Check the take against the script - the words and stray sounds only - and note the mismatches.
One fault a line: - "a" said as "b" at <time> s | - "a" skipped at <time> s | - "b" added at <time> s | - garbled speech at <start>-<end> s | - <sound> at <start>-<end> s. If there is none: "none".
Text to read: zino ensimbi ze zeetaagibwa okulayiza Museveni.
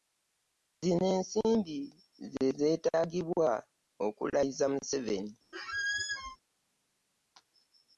- squeak at 5.5-6.4 s